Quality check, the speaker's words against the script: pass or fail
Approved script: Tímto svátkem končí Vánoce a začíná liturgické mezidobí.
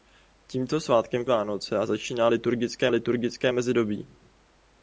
fail